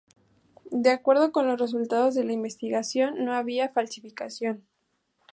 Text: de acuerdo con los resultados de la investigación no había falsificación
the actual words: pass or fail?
pass